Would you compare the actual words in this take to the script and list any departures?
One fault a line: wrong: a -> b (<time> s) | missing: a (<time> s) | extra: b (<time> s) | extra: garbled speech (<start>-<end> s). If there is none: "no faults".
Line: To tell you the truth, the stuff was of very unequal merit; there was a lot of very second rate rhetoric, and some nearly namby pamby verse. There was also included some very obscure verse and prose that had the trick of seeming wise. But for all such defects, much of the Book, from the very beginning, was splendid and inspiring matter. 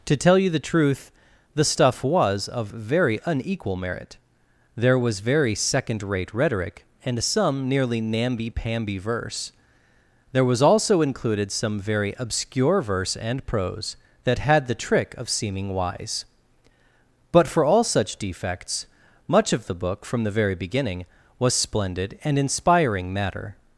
missing: a lot of (5.2 s)